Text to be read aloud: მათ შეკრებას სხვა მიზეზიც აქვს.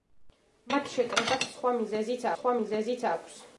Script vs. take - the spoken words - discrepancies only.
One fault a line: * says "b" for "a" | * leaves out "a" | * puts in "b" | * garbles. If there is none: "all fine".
* puts in "სხვა მიზეზიც"